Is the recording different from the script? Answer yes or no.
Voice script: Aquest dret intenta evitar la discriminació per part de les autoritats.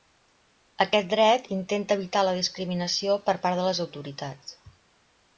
no